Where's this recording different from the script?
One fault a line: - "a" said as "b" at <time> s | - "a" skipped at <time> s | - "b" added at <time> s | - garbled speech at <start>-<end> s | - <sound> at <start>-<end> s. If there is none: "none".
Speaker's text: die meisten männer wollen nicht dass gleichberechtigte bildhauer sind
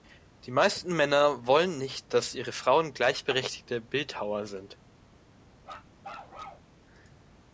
- "ihre frauen" added at 2.3 s
- bark at 5.6-6.7 s